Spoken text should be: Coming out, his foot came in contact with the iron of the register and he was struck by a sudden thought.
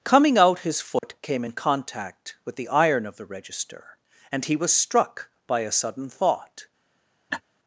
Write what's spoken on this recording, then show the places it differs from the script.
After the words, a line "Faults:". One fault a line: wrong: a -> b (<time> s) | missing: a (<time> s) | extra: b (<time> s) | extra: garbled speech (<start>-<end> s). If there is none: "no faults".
Coming out, his foot came in contact with the iron of the register and he was struck by a sudden thought.
Faults:
no faults